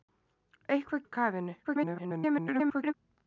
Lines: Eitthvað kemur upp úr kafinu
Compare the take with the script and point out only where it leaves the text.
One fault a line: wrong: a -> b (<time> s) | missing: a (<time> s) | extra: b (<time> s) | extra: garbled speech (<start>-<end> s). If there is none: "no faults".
missing: kemur upp (1.1 s)
extra: garbled speech (1.6-2.9 s)